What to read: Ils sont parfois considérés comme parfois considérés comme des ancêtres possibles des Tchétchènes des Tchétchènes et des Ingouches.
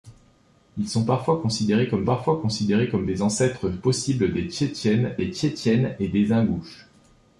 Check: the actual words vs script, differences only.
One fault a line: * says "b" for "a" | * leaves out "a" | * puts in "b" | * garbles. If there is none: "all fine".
all fine